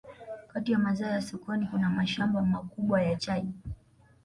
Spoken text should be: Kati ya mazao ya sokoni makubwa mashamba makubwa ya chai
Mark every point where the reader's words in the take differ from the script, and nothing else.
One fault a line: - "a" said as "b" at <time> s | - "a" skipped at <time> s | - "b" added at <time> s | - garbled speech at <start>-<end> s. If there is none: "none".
- "makubwa" said as "kuna" at 1.7 s